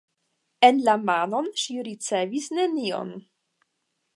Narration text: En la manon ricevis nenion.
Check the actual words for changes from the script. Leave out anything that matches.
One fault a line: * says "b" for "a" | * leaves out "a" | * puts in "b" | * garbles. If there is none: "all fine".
* puts in "ŝi"